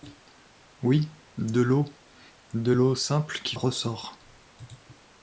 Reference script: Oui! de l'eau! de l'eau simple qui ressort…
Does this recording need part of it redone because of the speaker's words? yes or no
no